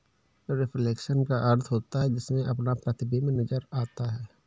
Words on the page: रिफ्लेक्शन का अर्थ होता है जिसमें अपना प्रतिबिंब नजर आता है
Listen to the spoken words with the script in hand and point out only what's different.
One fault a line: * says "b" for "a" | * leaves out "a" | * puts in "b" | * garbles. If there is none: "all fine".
all fine